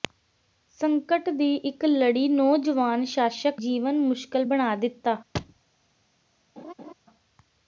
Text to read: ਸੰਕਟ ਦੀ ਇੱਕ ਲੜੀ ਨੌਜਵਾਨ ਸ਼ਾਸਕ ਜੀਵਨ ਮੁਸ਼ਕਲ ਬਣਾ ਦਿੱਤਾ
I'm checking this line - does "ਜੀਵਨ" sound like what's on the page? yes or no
yes